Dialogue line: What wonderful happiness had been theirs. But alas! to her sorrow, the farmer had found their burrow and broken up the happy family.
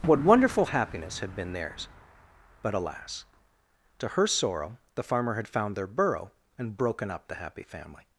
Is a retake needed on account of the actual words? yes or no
no